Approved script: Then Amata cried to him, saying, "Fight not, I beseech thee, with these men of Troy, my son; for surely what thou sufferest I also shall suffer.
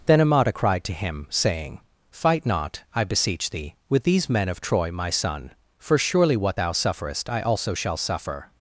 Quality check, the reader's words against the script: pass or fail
pass